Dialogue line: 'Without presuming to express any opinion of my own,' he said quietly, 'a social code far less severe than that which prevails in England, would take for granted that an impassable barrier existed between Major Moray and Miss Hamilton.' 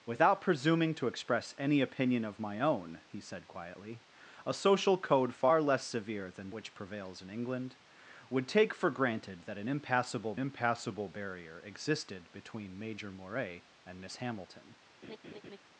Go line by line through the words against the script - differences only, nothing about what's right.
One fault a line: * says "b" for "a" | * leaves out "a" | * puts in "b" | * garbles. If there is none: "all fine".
* leaves out "that"
* puts in "impassable"